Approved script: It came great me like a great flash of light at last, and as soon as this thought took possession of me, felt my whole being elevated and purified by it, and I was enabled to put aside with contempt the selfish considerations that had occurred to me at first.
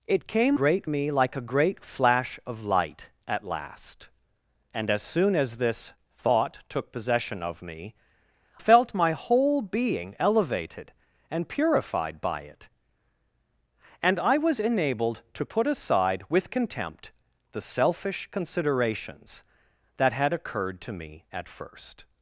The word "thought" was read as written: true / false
true